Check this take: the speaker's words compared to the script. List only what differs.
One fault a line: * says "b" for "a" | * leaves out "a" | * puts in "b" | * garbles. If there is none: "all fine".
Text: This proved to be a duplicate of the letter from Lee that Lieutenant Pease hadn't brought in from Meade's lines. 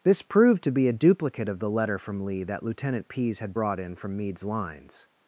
* says "had" for "hadn't"